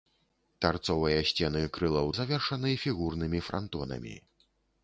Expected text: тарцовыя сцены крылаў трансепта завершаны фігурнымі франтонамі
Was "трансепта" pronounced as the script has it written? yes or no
no